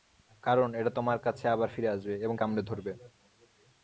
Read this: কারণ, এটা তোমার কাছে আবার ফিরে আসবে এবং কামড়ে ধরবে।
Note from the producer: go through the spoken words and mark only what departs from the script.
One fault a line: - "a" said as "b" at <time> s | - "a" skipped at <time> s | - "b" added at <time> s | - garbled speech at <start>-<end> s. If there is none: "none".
none